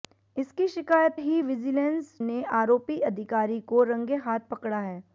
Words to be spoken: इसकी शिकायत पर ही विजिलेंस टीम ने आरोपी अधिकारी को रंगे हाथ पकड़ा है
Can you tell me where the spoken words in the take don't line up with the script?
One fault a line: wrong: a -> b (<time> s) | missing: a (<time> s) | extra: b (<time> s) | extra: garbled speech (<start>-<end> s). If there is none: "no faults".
missing: पर (1.2 s)
missing: टीम (2.1 s)